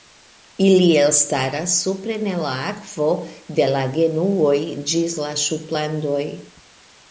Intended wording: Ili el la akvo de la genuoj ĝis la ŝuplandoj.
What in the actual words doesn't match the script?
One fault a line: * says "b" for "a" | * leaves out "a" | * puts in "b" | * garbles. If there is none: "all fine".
* puts in "elstaras supren"